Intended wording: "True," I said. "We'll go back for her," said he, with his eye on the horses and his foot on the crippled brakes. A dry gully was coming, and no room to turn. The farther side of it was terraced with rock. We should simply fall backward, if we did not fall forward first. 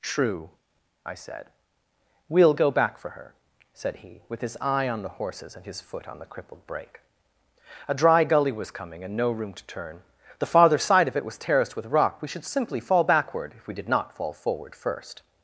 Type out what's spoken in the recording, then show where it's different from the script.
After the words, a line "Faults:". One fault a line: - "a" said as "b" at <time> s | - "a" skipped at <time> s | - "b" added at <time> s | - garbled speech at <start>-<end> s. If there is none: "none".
"True," I said. "We'll go back for her," said he, with his eye on the horses and his foot on the crippled brake. A dry gully was coming, and no room to turn. The farther side of it was terraced with rock. We should simply fall backward, if we did not fall forward first.
Faults:
- "brakes" said as "brake" at 6.7 s